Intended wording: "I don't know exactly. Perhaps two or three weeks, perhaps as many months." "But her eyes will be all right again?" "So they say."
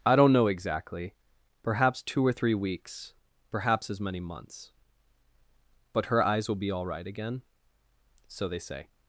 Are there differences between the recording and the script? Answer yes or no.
no